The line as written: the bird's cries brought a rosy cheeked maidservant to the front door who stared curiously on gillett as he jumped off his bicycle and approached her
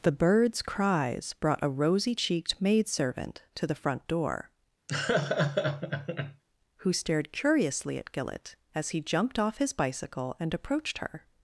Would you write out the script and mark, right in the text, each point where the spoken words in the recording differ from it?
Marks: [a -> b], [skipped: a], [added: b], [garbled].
the bird's cries brought a rosy cheeked maidservant to the front door who stared curiously [on -> at] gillett as he jumped off his bicycle and approached her